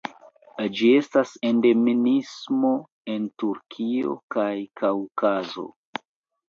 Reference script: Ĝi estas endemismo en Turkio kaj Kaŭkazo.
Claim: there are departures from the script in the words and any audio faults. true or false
false